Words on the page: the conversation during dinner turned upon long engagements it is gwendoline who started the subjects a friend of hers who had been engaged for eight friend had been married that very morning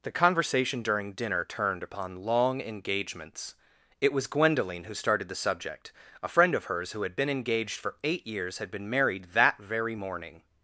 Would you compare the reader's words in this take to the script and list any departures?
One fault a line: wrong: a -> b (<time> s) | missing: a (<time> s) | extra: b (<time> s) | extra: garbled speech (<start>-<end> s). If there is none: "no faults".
wrong: is -> was (4.1 s)
wrong: subjects -> subject (5.3 s)
wrong: friend -> years (8.2 s)